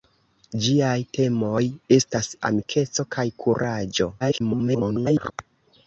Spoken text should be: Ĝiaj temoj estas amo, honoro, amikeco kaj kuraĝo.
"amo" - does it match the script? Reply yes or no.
no